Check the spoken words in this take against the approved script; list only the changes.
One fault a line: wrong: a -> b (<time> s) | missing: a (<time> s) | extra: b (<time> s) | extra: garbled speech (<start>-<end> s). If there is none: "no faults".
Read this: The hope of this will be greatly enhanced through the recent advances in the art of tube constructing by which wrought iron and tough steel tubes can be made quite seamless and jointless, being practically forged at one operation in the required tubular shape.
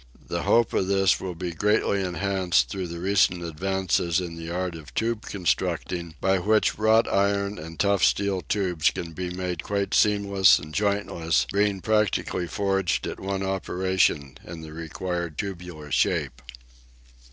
no faults